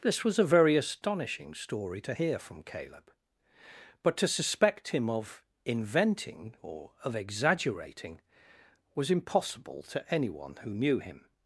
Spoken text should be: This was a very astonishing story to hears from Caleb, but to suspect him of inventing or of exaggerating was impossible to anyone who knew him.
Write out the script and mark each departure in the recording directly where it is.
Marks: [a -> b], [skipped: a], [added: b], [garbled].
This was a very astonishing story to [hears -> hear] from Caleb, but to suspect him of inventing or of exaggerating was impossible to anyone who knew him.